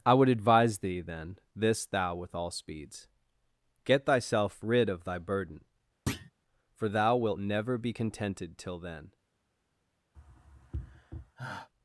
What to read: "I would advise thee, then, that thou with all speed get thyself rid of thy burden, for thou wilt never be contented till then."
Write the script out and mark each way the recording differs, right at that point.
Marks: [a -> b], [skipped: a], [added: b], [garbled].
"I would advise thee, then, [that -> this] thou with all [speed -> speeds] get thyself rid of thy burden, for thou wilt never be contented till then."